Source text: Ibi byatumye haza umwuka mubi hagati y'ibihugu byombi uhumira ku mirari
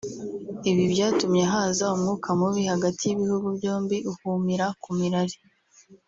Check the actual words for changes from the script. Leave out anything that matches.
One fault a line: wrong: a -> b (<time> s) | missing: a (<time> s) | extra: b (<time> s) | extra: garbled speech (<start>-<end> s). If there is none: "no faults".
no faults